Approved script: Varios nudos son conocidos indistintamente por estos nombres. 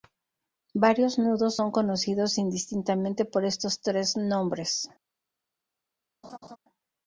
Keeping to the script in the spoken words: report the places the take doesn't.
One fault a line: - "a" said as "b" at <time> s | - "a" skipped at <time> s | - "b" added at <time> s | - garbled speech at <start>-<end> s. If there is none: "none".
- "tres" added at 3.8 s